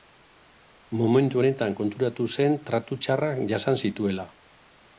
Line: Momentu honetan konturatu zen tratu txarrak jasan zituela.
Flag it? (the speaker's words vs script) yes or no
no